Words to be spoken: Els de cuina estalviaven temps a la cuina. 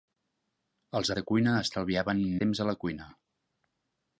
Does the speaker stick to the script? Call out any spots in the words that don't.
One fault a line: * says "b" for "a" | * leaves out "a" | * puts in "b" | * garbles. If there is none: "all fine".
all fine